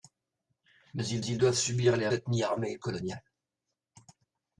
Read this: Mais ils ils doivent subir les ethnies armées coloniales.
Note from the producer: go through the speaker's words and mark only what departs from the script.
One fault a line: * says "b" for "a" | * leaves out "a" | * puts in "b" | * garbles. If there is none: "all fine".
all fine